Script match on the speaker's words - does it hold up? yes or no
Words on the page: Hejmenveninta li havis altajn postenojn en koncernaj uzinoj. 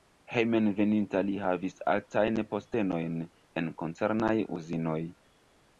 yes